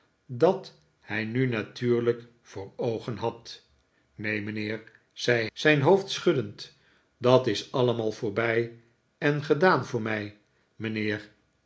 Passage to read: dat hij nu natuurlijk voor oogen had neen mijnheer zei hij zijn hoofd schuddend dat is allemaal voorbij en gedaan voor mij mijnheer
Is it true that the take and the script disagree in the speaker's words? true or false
true